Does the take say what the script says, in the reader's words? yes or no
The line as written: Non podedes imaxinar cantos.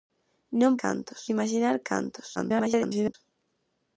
no